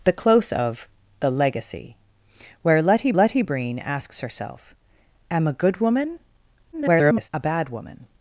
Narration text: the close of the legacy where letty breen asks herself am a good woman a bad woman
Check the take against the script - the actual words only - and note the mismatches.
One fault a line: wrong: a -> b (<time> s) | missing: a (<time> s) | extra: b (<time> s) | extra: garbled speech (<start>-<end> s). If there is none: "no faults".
extra: letty (3.1 s)
extra: garbled speech (6.7-7.3 s)